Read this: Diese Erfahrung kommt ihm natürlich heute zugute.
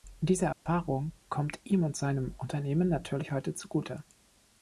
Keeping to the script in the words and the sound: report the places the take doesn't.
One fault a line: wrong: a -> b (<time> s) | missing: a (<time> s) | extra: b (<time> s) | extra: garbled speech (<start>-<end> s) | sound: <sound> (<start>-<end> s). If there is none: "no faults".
sound: dropout (0.5-0.7 s)
extra: und seinem Unternehmen (1.8 s)